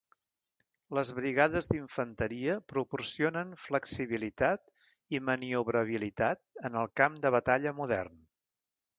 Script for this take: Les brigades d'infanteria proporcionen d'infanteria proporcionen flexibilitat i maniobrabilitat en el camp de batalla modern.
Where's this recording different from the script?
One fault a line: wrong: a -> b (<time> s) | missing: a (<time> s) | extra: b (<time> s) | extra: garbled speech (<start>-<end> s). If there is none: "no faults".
missing: d'infanteria proporcionen (3.5 s)